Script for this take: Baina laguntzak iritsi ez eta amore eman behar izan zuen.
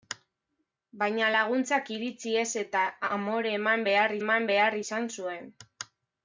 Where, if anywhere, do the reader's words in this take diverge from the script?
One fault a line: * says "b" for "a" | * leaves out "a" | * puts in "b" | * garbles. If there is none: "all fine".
* puts in "eman behar"